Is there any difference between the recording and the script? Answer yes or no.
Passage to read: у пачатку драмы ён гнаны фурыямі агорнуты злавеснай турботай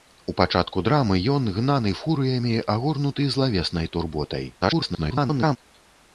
yes